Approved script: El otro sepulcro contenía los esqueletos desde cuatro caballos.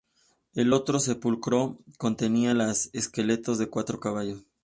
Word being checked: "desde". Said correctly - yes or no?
no